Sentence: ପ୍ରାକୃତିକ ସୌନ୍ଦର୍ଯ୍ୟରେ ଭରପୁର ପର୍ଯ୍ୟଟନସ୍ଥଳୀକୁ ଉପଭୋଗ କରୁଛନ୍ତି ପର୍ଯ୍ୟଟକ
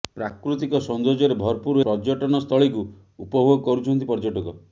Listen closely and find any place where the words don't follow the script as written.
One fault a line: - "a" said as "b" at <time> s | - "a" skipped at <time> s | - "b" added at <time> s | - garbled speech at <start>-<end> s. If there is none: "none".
none